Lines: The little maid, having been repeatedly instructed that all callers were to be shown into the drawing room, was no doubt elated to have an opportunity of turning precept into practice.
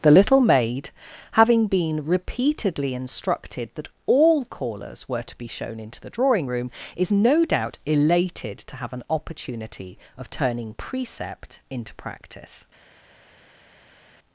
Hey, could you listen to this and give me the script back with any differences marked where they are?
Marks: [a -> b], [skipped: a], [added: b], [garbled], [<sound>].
The little maid, having been repeatedly instructed that all callers were to be shown into the drawing room, [was -> is] no doubt elated to have an opportunity of turning precept into practice.